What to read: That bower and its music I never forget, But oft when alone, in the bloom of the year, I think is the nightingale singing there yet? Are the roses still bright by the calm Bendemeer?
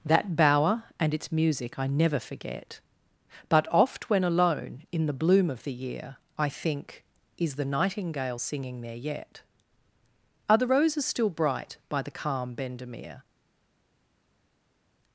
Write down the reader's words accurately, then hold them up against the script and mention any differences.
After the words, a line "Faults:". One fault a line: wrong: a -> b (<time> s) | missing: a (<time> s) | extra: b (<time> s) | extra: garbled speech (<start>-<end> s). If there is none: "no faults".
That bower and its music I never forget, But oft when alone, in the bloom of the year, I think is the nightingale singing there yet? Are the roses still bright by the calm Bendemeer?
Faults:
no faults